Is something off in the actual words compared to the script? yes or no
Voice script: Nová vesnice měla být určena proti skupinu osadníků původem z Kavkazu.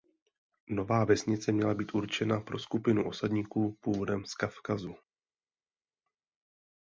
yes